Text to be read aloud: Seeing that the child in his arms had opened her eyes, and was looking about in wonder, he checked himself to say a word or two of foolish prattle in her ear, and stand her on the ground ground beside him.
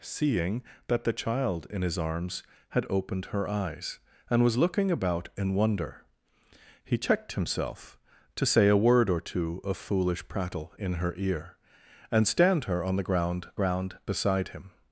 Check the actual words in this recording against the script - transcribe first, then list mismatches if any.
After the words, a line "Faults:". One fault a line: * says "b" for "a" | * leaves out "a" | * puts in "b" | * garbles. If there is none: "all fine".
Seeing that the child in his arms had opened her eyes, and was looking about in wonder, he checked himself to say a word or two of foolish prattle in her ear, and stand her on the ground ground beside him.
Faults:
all fine